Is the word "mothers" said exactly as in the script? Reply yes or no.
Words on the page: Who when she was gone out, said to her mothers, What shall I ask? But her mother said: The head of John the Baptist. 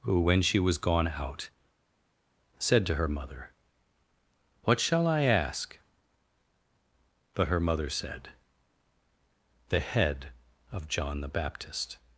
no